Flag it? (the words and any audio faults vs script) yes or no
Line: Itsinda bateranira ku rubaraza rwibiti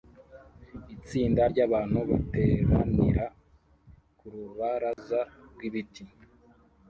yes